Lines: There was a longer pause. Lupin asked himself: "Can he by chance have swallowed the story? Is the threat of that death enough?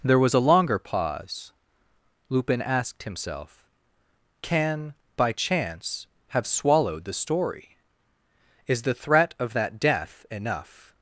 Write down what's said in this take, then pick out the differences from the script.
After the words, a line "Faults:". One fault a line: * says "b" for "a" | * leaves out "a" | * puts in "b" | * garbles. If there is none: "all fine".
There was a longer pause. Lupin asked himself: "Can by chance have swallowed the story? Is the threat of that death enough?
Faults:
* leaves out "he"